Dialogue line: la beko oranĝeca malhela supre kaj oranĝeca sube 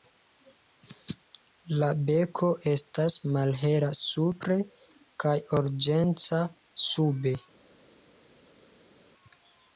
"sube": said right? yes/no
yes